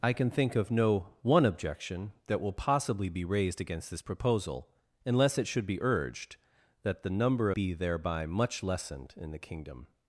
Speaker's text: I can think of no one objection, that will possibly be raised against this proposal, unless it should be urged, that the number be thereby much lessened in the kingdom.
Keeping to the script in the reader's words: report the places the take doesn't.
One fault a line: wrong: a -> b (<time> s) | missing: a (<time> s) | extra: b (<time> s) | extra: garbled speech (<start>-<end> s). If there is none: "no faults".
no faults